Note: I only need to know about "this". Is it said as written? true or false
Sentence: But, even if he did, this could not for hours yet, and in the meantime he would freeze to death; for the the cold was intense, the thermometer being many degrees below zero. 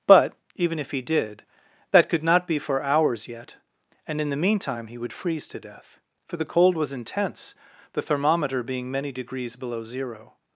false